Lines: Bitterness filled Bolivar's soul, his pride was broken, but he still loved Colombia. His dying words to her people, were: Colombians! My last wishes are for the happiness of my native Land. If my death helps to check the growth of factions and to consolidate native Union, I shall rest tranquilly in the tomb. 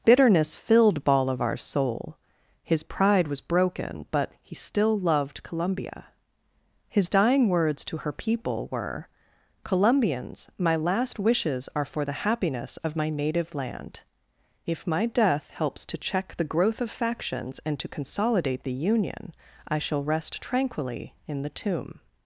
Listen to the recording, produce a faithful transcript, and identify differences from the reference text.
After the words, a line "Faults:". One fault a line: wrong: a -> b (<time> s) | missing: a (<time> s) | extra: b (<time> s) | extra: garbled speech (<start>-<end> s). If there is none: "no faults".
Bitterness filled Bolivar's soul, his pride was broken, but he still loved Colombia. His dying words to her people, were: Colombians! My last wishes are for the happiness of my native Land. If my death helps to check the growth of factions and to consolidate the Union, I shall rest tranquilly in the tomb.
Faults:
wrong: native -> the (18.6 s)